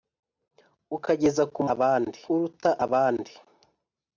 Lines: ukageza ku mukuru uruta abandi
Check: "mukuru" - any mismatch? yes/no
yes